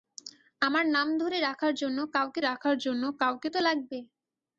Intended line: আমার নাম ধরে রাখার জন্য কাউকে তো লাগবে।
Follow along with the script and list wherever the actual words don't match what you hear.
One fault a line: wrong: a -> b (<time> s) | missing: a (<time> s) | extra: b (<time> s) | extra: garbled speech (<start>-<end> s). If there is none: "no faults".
extra: রাখার জন্য কাউকে (2.4 s)